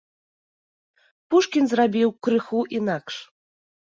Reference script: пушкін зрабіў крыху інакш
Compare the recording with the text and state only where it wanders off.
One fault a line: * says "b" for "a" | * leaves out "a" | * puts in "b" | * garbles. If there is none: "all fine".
all fine